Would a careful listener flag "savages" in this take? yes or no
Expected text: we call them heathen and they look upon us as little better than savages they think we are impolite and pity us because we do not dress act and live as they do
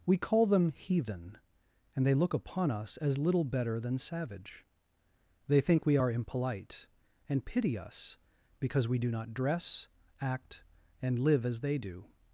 yes